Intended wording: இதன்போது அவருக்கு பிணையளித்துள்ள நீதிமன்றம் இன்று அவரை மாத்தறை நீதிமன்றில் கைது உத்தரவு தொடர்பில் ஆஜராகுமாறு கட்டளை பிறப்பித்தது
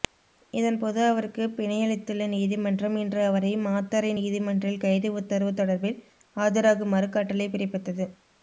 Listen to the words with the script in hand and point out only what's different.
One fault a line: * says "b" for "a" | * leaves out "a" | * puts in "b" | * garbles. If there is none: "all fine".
all fine